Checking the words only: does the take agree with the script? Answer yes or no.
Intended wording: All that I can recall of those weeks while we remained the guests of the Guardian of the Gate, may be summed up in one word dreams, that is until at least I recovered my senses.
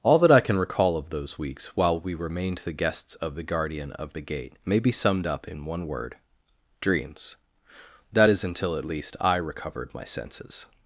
yes